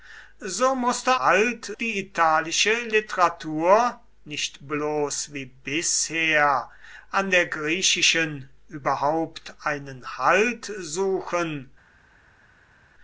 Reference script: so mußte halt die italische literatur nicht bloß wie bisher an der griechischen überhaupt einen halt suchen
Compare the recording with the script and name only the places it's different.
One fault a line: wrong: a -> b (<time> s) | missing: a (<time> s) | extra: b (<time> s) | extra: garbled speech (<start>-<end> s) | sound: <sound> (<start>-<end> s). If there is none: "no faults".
no faults